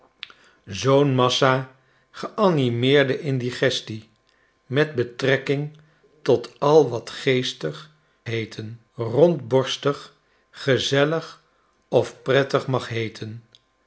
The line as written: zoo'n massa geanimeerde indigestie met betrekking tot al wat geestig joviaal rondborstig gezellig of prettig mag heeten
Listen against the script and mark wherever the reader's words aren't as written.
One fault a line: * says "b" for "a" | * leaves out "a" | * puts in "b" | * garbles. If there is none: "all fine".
* says "heeten" for "joviaal"